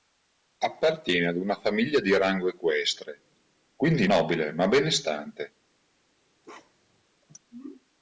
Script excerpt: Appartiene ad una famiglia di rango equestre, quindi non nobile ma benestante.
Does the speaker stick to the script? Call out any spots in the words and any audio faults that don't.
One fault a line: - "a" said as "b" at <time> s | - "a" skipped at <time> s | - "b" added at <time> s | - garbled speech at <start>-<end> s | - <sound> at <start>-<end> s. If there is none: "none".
- "non" skipped at 4.1 s
- bark at 6.4-7.0 s